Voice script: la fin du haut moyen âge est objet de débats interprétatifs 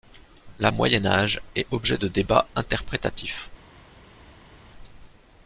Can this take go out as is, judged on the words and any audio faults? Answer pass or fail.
fail